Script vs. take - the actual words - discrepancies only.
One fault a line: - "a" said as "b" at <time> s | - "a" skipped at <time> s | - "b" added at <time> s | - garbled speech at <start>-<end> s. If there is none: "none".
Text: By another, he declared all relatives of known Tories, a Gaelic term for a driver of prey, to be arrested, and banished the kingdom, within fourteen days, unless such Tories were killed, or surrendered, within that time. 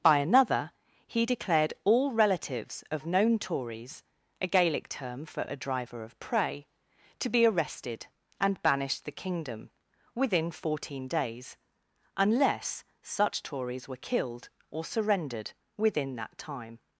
none